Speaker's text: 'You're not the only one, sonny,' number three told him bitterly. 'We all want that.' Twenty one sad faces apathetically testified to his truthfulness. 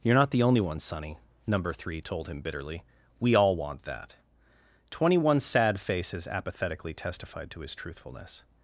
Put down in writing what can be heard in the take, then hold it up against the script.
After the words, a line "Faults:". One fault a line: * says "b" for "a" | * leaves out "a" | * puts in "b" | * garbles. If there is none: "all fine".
'You're not the only one, sonny,' number three told him bitterly. 'We all want that.' Twenty one sad faces apathetically testified to his truthfulness.
Faults:
all fine